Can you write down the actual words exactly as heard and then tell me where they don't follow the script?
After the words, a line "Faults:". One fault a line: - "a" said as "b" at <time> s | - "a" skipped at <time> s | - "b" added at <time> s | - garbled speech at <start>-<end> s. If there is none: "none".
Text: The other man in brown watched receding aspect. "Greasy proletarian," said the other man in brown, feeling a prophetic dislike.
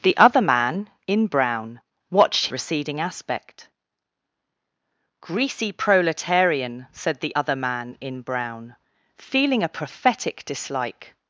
The other man in brown watched receding aspect. "Greasy proletarian," said the other man in brown, feeling a prophetic dislike.
Faults:
none